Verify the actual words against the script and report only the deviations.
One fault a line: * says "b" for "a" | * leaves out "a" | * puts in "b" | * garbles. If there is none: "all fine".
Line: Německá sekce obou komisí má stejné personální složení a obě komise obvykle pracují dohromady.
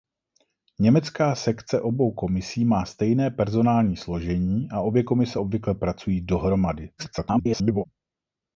* garbles